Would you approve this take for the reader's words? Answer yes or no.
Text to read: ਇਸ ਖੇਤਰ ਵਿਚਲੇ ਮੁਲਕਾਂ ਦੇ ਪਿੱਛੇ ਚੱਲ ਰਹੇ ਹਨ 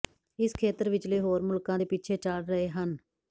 no